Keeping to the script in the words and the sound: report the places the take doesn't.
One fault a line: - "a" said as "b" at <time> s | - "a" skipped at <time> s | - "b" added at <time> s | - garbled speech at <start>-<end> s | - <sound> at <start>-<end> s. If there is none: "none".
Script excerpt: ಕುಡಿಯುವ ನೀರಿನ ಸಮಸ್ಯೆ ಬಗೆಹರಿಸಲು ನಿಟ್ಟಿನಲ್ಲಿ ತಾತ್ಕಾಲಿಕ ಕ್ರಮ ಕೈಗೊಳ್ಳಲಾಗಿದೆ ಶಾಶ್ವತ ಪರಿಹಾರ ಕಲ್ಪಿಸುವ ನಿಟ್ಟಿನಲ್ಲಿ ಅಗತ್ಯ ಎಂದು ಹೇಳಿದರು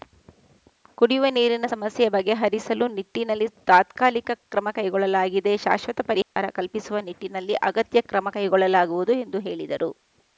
- dropout at 6.2-6.4 s
- "ಕ್ರಮ ಕೈಗೊಳ್ಳಲಾಗುವುದು" added at 8.1 s